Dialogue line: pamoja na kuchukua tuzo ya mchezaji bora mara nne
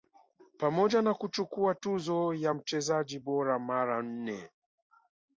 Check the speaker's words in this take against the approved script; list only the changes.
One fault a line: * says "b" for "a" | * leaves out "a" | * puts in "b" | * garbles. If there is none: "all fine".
all fine